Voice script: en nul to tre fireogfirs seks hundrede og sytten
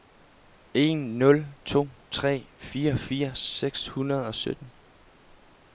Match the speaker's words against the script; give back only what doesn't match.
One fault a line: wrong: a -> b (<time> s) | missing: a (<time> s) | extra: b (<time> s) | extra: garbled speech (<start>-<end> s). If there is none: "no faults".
no faults